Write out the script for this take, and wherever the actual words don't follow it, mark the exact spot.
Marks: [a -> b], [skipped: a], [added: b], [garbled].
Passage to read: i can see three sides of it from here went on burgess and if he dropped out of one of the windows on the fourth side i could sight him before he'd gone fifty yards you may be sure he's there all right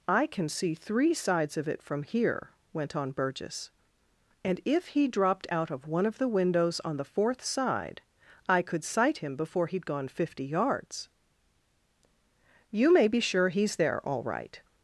i can see three sides of it from here went on burgess and if he dropped out of one of the windows on the fourth side i could sight him before he'd gone fifty yards you may be sure he's there all right